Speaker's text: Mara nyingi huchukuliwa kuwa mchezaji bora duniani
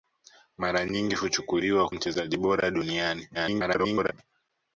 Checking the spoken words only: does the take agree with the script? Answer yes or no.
no